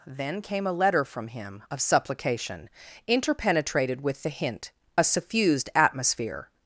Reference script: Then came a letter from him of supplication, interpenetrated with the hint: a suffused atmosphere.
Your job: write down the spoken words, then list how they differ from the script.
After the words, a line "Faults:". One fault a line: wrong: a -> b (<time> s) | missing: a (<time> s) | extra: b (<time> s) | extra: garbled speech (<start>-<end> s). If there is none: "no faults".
Then came a letter from him of supplication, interpenetrated with the hint: a suffused atmosphere.
Faults:
no faults